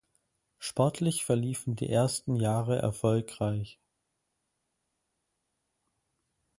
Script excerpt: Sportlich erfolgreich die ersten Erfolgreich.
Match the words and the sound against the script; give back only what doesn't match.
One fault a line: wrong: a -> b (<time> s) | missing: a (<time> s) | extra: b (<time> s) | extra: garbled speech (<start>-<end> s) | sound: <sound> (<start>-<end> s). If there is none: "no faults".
wrong: erfolgreich -> verliefen (1.2 s)
extra: Jahre (2.4 s)